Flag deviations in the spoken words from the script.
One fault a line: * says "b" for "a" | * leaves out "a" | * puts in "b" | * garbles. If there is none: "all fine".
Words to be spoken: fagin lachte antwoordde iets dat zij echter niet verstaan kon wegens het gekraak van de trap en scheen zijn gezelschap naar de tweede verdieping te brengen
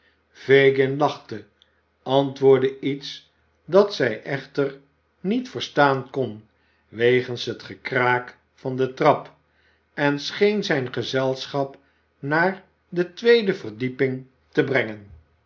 all fine